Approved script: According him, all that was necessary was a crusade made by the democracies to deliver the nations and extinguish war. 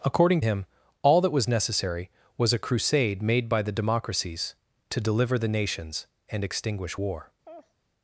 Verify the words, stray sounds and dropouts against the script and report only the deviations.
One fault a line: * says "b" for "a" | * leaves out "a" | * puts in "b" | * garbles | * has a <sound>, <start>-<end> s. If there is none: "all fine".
* has a laugh, 7.4-7.7 s